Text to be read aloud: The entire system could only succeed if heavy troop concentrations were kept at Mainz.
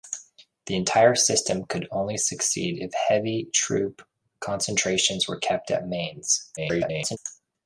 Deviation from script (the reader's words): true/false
true